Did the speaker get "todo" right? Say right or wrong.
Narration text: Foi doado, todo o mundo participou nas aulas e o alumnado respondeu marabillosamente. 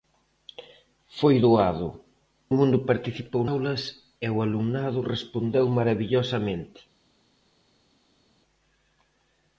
wrong